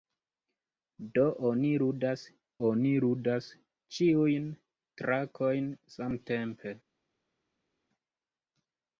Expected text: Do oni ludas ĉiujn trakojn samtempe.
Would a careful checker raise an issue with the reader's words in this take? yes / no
yes